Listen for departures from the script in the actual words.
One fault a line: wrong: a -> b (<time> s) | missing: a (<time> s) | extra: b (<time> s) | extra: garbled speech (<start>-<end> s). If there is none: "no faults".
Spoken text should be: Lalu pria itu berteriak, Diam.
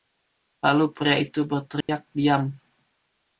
no faults